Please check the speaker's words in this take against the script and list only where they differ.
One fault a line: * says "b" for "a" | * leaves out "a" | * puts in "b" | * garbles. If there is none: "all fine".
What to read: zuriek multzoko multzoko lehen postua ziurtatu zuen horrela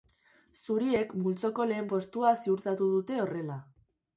* leaves out "multzoko"
* says "dute" for "zuen"